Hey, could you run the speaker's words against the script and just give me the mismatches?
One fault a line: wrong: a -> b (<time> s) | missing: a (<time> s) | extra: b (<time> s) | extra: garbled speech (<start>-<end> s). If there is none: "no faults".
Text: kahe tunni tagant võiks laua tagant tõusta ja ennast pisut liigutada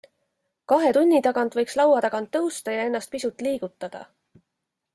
no faults